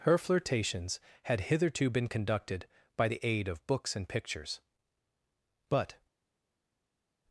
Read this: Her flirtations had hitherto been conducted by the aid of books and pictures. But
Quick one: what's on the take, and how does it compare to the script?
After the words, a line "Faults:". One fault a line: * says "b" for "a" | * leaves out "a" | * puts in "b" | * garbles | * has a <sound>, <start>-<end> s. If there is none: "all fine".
Her flirtations had hitherto been conducted by the aid of books and pictures. But
Faults:
all fine